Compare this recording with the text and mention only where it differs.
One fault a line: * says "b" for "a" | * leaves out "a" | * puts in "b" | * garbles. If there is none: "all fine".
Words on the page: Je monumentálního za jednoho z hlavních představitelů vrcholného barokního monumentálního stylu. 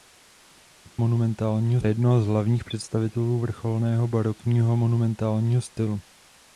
all fine